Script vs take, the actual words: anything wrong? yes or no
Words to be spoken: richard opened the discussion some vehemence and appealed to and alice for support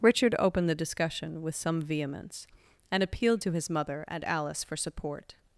yes